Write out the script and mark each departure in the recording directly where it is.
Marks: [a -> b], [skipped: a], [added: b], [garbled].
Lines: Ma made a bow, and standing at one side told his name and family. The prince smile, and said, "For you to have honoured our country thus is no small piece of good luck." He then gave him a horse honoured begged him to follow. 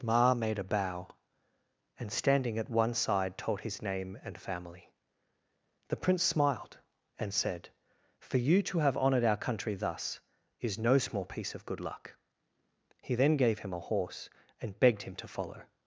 Ma made a bow, and standing at one side told his name and family. The prince [smile, -> smiled] and said, "For you to have honoured our country thus is no small piece of good luck." He then gave him a horse [honoured -> and] begged him to follow.